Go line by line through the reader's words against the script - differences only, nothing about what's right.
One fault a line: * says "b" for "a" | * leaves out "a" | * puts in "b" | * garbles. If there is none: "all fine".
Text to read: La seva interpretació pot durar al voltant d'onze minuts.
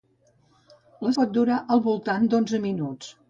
* leaves out "seva interpretació"